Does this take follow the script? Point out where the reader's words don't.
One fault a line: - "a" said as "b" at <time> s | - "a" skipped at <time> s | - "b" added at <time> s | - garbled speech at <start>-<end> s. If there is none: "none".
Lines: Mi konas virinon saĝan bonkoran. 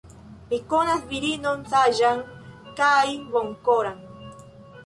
- "kaj" added at 2.8 s